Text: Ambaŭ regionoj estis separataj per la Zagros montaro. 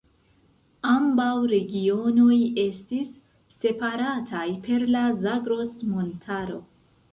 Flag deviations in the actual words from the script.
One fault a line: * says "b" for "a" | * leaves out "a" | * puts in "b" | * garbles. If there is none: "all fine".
all fine